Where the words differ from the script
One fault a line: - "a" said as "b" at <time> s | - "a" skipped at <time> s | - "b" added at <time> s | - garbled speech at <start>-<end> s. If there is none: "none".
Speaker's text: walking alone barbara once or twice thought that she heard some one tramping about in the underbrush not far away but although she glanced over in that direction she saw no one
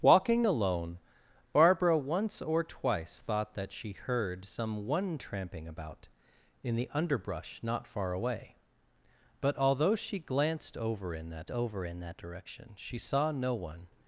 - "over in that" added at 11.5 s